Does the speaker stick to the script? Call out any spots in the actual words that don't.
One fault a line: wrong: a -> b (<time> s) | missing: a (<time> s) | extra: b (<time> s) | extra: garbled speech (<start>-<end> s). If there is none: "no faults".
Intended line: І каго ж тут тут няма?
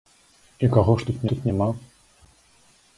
no faults